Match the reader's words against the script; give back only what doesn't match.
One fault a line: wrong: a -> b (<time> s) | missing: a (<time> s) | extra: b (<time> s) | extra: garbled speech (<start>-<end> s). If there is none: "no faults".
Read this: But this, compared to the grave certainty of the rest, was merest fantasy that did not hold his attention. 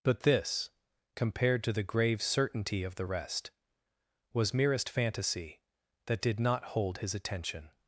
no faults